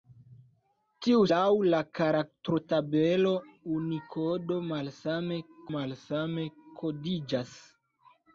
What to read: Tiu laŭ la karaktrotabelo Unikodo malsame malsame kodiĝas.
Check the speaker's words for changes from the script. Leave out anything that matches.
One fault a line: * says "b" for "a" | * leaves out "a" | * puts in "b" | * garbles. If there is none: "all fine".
all fine